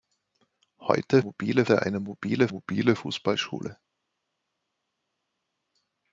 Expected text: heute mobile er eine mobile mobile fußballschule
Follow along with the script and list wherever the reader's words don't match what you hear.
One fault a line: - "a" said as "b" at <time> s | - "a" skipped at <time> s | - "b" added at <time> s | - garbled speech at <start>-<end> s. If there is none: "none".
none